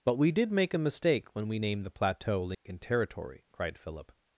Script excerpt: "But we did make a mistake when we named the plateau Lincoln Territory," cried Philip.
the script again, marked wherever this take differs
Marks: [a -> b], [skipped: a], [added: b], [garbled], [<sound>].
"But we did make a mistake when we named the plateau Lincoln [dropout] Territory," cried Philip.